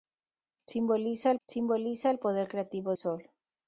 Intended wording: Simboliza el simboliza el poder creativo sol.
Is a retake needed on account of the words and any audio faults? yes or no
no